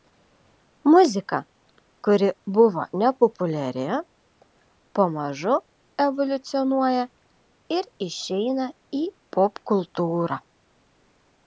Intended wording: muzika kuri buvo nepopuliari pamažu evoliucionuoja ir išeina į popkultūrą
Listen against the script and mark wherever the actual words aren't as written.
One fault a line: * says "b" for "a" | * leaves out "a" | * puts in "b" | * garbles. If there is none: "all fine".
all fine